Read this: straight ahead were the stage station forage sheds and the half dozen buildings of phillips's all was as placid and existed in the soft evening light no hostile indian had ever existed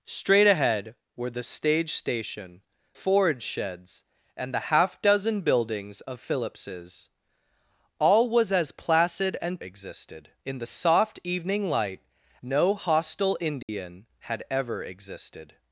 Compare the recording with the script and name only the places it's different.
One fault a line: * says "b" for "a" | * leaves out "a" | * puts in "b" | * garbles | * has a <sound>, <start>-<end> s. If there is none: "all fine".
* has a dropout, 13.6-13.7 s